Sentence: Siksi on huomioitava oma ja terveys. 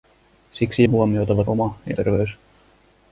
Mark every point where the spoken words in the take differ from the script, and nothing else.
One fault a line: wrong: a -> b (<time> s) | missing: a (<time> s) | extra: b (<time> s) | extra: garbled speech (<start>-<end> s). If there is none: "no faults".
no faults